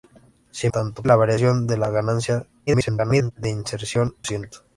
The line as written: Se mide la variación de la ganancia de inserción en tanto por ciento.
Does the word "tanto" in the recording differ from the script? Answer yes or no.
yes